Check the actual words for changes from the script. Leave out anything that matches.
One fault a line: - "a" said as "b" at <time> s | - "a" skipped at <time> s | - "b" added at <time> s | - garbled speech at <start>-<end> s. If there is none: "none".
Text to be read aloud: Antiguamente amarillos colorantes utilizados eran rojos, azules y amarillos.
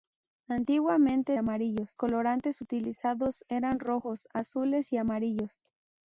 none